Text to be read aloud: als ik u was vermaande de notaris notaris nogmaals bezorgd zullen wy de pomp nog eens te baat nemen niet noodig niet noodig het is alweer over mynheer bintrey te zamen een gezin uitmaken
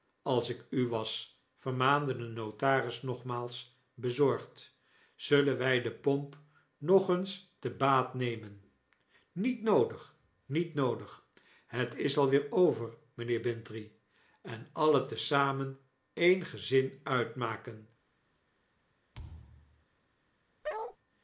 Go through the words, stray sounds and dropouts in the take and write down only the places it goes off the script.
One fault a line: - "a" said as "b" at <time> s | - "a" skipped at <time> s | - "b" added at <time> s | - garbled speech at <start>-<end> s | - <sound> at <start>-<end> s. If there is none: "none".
- "notaris" skipped at 3.0 s
- "en alien" added at 14.4 s
- thud at 19.1-19.9 s
- bark at 20.6-21.0 s